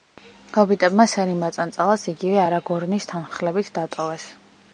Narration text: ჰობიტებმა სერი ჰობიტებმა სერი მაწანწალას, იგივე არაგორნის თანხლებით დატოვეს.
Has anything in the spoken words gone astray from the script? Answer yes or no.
yes